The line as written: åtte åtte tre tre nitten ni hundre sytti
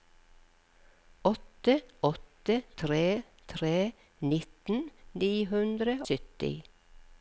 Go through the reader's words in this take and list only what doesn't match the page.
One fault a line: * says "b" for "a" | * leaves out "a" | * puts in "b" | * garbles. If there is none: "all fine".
all fine